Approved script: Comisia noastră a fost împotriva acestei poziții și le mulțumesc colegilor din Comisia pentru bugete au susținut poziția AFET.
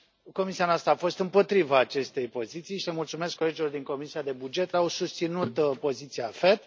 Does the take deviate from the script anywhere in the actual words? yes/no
no